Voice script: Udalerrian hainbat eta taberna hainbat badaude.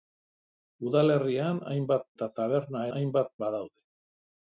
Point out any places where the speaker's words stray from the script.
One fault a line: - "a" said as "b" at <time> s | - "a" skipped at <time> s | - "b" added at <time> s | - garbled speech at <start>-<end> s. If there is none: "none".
none